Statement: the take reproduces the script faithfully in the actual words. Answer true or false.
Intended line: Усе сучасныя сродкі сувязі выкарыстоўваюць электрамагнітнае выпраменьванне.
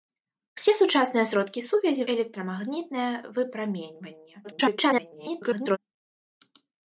false